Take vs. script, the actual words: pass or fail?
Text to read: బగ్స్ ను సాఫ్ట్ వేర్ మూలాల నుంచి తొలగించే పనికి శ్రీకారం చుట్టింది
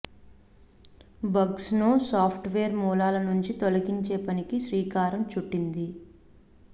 pass